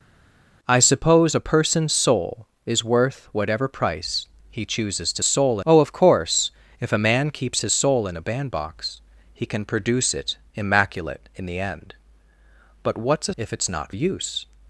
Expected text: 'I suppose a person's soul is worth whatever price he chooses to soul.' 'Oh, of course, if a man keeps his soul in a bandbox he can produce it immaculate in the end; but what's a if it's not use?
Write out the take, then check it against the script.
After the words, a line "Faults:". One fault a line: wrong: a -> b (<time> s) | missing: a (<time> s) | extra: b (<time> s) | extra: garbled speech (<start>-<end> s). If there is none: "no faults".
'I suppose a person's soul is worth whatever price he chooses to soul.' 'Oh, of course, if a man keeps his soul in a bandbox he can produce it immaculate in the end; but what's a if it's not use?
Faults:
no faults